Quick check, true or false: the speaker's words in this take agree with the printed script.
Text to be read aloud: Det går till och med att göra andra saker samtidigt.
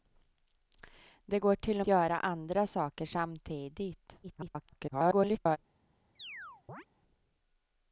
false